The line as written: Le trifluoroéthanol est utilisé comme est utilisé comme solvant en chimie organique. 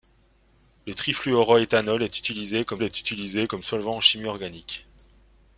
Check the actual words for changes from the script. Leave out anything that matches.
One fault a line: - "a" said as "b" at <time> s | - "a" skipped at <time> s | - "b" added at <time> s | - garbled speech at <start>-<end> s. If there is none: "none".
none